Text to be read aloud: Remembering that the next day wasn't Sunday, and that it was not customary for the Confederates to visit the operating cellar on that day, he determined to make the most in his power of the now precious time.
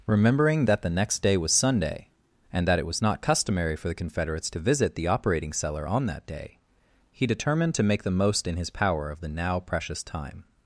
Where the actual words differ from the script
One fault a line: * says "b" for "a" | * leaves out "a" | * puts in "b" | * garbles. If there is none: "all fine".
* says "was" for "wasn't"